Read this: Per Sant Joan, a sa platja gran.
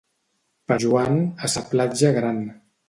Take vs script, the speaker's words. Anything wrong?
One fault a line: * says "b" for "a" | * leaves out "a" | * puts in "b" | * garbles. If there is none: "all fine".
* leaves out "Sant"